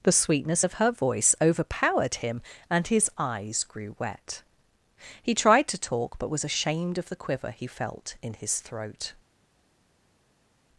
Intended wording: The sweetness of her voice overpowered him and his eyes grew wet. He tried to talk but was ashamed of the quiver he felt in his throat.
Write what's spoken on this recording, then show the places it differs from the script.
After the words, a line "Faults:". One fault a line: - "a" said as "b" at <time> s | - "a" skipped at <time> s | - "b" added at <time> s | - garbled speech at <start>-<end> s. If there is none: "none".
The sweetness of her voice overpowered him and his eyes grew wet. He tried to talk but was ashamed of the quiver he felt in his throat.
Faults:
none